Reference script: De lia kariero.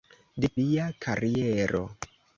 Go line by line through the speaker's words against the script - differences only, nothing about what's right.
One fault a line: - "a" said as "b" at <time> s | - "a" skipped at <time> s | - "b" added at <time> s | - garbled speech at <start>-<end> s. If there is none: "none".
none